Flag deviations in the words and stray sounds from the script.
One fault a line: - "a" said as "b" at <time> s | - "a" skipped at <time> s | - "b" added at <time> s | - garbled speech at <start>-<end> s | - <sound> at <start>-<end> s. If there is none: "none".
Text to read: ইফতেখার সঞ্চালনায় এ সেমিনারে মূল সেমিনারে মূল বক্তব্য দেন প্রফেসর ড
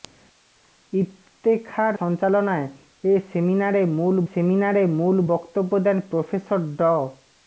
none